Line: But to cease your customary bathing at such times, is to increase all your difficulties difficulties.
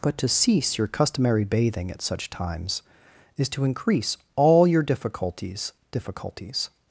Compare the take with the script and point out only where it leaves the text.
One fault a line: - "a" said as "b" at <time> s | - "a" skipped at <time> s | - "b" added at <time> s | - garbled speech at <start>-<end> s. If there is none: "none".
none